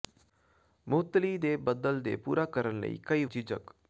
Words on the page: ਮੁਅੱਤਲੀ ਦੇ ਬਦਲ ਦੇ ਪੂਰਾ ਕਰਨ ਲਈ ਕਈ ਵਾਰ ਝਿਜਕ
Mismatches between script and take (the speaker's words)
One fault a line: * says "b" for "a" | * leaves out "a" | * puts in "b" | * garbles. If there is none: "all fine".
* leaves out "ਵਾਰ"